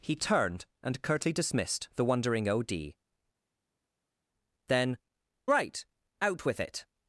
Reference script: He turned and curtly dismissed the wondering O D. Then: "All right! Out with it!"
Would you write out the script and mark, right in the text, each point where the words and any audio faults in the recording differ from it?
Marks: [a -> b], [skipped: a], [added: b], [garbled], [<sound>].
He turned and curtly dismissed the wondering O D. Then: [skipped: "All] right! Out with it!"